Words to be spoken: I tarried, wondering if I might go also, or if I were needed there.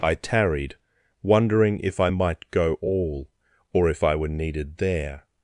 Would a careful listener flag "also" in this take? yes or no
yes